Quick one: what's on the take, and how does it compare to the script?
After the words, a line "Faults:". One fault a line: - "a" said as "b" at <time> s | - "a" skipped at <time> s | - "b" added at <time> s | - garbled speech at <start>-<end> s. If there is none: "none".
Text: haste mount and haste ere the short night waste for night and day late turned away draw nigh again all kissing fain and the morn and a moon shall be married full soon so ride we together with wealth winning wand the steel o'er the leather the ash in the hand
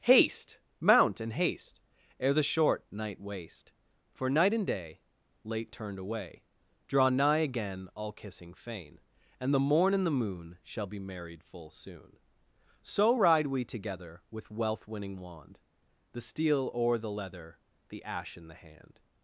haste mount and haste ere the short night waste for night and day late turned away draw nigh again all kissing fain and the morn and the moon shall be married full soon so ride we together with wealth winning wand the steel o'er the leather the ash in the hand
Faults:
- "a" said as "the" at 10.1 s